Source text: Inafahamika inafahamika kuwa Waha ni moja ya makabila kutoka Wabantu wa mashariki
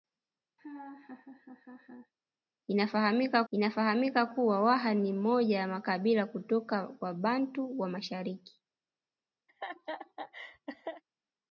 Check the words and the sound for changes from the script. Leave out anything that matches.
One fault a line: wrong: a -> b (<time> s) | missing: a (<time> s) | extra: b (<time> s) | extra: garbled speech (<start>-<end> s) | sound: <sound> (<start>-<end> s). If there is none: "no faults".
sound: laugh (0.6-2.1 s)
sound: laugh (9.5-11.0 s)